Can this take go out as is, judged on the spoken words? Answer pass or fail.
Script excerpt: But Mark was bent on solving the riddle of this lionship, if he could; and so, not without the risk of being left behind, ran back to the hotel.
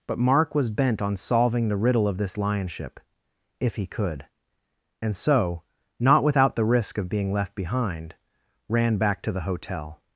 pass